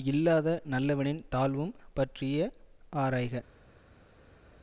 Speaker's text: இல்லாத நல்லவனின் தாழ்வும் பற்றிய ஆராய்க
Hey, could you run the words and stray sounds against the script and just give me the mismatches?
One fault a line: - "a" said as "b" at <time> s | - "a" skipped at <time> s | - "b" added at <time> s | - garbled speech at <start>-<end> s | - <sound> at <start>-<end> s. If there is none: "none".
none